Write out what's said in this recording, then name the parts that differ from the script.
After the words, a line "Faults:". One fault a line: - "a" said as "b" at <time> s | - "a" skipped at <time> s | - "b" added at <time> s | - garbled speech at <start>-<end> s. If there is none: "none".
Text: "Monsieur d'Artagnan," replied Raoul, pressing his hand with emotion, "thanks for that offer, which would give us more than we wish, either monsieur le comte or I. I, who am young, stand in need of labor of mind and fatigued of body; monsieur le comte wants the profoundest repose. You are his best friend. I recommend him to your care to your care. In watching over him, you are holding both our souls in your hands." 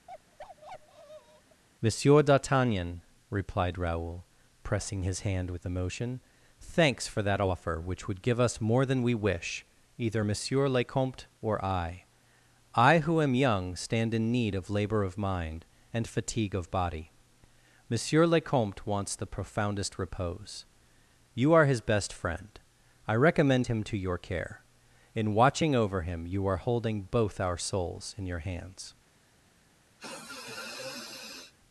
"Monsieur d'Artagnan," replied Raoul, pressing his hand with emotion, "thanks for that offer, which would give us more than we wish, either monsieur le comte or I. I, who am young, stand in need of labor of mind and fatigue of body; monsieur le comte wants the profoundest repose. You are his best friend. I recommend him to your care. In watching over him, you are holding both our souls in your hands."
Faults:
- "fatigued" said as "fatigue" at 16.1 s
- "to your care" skipped at 24.6 s